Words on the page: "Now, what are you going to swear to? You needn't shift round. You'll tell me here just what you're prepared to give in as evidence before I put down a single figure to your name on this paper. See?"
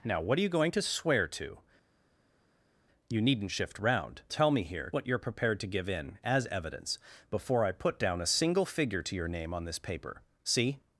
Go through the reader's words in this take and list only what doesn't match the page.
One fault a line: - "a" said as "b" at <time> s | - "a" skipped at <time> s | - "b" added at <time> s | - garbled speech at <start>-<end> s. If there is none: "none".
- "You'll" skipped at 4.2 s
- "just" skipped at 4.9 s